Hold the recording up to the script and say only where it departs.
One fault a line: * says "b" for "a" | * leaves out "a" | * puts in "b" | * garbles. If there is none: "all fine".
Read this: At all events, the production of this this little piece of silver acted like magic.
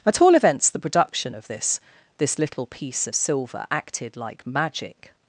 all fine